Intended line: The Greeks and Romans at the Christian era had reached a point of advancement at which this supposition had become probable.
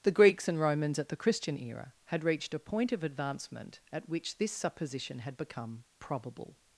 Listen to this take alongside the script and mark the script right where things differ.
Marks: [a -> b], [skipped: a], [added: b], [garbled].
The Greeks and Romans at the Christian era had reached a point of advancement at which this supposition had become probable.